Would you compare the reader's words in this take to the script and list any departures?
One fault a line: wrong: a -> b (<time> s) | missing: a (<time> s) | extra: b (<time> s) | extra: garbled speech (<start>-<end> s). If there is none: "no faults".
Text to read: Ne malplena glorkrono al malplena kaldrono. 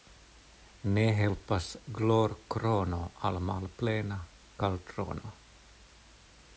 wrong: malplena -> helpas (1.2 s)